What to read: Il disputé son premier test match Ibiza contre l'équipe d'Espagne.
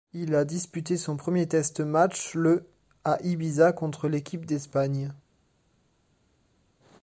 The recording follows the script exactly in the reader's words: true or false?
false